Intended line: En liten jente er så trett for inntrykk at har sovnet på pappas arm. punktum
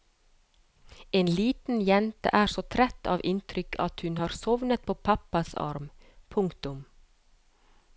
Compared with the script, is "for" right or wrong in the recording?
wrong